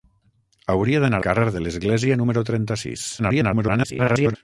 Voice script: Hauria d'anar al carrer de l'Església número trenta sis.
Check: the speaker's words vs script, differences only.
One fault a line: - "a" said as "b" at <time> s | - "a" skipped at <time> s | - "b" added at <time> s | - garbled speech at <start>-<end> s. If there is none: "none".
- "al" skipped at 1.2 s
- garbled speech at 3.2-4.4 s